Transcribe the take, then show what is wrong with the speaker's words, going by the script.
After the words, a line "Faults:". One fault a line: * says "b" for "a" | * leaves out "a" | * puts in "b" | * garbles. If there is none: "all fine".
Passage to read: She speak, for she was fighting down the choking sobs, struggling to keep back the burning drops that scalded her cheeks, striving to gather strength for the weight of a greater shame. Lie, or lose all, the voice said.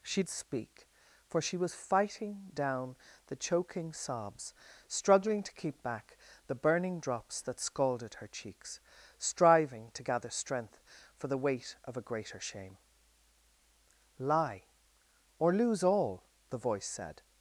She speak, for she was fighting down the choking sobs, struggling to keep back the burning drops that scalded her cheeks, striving to gather strength for the weight of a greater shame. Lie, or lose all, the voice said.
Faults:
all fine